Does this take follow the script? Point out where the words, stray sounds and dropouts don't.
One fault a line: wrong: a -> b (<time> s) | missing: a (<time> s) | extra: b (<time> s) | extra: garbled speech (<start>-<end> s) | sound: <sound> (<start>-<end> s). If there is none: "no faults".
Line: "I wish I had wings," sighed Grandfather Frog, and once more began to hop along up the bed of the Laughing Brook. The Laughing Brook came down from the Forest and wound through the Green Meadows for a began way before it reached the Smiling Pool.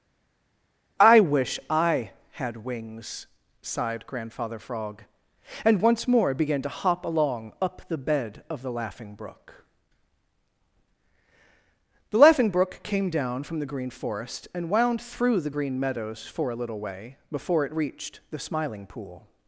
extra: Green (13.7 s)
wrong: began -> little (16.6 s)